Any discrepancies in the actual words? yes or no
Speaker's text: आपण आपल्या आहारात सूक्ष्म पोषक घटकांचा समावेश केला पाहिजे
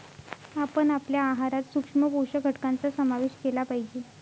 no